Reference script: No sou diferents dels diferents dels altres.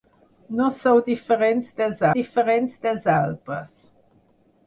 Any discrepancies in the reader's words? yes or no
no